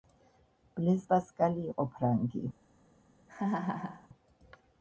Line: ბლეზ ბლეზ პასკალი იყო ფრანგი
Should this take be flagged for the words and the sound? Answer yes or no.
yes